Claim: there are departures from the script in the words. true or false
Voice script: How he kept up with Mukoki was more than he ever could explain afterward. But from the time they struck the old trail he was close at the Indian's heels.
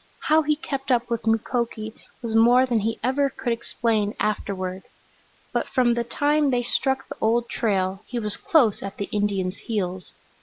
false